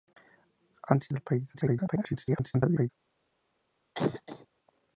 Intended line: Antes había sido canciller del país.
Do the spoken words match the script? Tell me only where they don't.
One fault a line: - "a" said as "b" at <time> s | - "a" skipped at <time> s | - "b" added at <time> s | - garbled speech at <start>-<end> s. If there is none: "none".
- "había sido canciller" skipped at 1.1 s
- garbled speech at 1.5-2.9 s